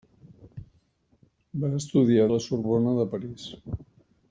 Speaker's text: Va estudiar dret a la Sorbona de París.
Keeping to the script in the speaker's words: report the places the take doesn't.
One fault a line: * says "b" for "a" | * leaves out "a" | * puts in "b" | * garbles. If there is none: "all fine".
* leaves out "dret"